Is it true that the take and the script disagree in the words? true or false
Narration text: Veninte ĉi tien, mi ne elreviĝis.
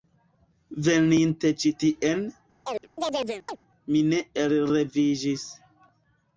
false